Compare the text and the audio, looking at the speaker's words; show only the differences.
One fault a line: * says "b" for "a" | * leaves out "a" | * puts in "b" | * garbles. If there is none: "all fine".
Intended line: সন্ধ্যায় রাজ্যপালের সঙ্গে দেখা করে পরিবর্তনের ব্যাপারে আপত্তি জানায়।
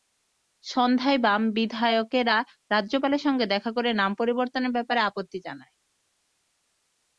* puts in "বাম বিধায়কেরা"
* puts in "নাম"